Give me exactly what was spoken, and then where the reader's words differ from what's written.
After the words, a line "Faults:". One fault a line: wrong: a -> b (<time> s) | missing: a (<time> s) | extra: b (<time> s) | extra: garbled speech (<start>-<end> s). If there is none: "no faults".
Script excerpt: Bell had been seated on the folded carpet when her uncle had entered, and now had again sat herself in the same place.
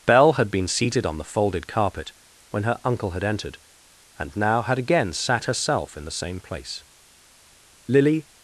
Bell had been seated on the folded carpet when her uncle had entered, and now had again sat herself in the same place. Lily
Faults:
extra: Lily (7.9 s)